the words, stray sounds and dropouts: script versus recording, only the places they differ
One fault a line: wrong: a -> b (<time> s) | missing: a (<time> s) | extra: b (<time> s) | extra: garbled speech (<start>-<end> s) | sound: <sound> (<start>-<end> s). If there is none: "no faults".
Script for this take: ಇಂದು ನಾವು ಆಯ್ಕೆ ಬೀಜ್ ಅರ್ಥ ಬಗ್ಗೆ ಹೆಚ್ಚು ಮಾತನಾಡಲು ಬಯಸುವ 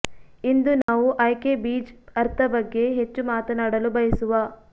sound: dropout (0.8-0.9 s)